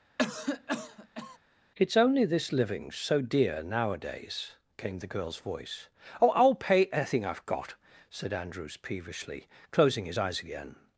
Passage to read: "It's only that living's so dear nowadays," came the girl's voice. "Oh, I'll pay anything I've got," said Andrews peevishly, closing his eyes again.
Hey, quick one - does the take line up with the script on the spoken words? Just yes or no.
no